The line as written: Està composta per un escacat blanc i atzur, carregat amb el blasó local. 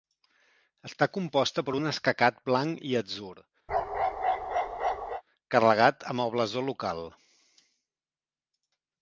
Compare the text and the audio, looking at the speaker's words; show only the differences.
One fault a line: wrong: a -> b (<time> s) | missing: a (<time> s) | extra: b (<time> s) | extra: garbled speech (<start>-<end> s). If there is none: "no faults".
no faults